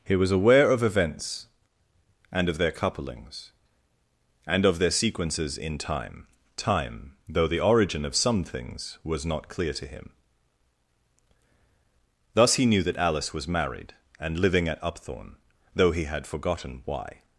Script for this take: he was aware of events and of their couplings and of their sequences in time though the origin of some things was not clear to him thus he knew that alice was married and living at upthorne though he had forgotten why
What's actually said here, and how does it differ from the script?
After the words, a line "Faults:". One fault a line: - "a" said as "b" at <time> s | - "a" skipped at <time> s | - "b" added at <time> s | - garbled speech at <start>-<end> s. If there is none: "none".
he was aware of events and of their couplings and of their sequences in time time though the origin of some things was not clear to him thus he knew that alice was married and living at upthorne though he had forgotten why
Faults:
- "time" added at 6.6 s